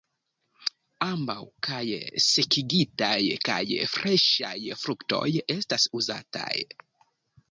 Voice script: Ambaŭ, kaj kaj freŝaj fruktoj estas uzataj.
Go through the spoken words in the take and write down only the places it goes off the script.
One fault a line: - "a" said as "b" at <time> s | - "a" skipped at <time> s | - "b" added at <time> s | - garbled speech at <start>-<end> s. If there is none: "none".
- "sekigitaj" added at 2.3 s